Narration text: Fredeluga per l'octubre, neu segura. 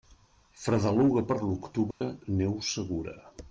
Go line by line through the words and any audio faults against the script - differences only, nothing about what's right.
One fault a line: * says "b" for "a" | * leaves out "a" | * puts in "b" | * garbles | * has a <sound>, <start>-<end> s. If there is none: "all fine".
* has a dropout, 1.9-2.0 s